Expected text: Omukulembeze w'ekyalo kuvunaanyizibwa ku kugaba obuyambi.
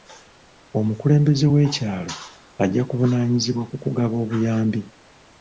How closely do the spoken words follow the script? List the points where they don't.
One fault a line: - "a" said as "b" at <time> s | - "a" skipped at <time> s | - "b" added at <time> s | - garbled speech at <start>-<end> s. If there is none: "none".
- "ajja" added at 2.6 s